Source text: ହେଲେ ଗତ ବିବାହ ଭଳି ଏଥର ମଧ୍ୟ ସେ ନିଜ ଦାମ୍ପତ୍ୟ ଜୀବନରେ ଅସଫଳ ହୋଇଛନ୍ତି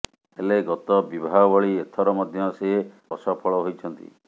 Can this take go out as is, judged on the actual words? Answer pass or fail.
fail